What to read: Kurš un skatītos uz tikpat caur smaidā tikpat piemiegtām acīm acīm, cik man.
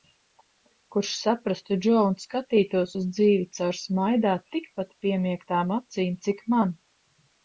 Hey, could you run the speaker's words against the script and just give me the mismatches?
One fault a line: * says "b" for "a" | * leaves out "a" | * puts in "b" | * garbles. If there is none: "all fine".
* puts in "saprastu Džo"
* says "dzīvi" for "tikpat"
* leaves out "acīm"